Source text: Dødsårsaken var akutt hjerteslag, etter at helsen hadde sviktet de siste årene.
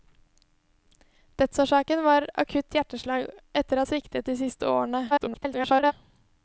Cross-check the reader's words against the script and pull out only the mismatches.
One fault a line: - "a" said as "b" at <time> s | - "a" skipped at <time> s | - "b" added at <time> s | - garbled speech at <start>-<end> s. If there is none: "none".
- "at helsen hadde" skipped at 3.8 s
- garbled speech at 5.1-5.9 s